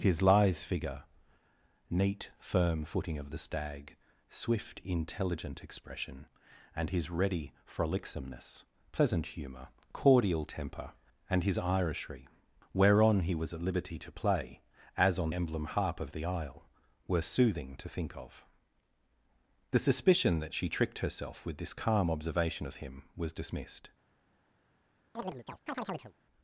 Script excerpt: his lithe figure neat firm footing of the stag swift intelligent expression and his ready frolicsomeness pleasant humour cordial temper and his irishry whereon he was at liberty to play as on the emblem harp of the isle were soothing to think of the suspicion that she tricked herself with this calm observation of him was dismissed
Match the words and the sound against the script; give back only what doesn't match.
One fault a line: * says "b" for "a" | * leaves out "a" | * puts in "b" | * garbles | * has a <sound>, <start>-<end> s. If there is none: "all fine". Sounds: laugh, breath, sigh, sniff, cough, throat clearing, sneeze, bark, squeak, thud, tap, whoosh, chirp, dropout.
* leaves out "the"
* has a chirp, 25.1-26.1 s